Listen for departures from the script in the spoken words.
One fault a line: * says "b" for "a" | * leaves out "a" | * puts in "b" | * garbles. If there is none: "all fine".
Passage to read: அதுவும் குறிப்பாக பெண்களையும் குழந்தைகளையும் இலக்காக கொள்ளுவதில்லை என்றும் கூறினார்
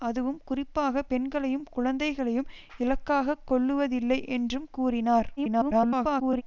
* garbles